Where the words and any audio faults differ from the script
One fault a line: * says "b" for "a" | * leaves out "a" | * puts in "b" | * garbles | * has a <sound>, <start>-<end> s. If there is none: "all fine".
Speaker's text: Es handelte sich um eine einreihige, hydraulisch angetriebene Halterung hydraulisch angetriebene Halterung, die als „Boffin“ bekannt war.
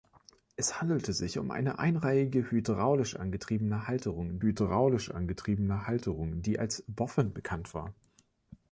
all fine